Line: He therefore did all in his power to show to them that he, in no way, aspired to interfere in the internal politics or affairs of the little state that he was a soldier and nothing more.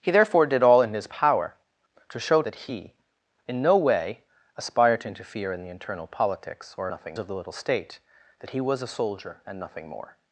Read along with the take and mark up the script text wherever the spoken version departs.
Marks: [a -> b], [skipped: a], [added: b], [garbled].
He therefore did all in his power to show [skipped: to them] that he, in no way, aspired to interfere in the internal politics or [affairs -> nothing] of the little state that he was a soldier and nothing more.